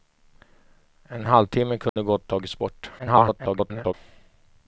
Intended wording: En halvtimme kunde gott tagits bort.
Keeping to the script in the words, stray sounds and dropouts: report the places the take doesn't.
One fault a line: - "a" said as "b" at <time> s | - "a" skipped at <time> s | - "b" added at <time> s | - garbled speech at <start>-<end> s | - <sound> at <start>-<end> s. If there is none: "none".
- dropout at 1.9-2.0 s
- garbled speech at 3.0-3.9 s